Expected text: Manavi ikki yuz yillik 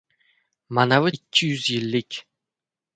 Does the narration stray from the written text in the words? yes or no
no